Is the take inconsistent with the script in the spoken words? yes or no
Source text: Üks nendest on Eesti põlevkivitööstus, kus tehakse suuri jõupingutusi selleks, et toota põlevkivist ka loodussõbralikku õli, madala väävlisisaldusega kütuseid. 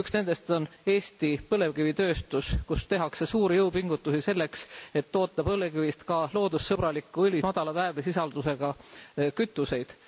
no